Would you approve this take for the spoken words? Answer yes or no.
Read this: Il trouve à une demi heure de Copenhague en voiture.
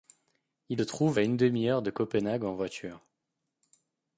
yes